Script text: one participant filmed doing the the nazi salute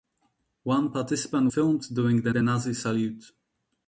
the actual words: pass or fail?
pass